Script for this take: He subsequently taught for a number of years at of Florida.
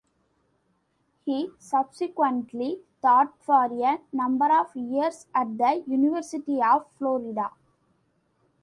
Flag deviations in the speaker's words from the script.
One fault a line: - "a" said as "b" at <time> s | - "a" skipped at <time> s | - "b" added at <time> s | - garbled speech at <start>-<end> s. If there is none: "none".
- "the University" added at 5.6 s